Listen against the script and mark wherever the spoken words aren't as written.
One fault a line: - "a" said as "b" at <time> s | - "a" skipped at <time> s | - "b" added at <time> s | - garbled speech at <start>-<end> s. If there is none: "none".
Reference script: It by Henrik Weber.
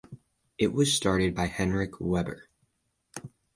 - "was started" added at 0.7 s